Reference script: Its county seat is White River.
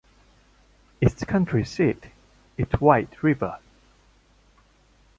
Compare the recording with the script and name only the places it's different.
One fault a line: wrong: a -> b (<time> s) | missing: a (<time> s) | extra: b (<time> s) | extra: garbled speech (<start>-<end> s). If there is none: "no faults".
no faults